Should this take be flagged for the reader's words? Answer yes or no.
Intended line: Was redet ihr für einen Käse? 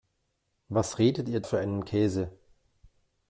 no